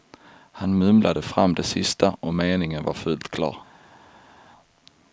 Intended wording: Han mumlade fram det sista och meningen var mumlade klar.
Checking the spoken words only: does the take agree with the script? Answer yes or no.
no